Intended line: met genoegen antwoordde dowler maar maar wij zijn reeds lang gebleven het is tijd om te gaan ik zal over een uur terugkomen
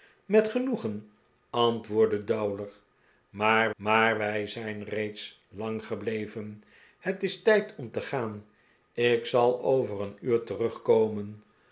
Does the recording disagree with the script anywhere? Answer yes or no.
no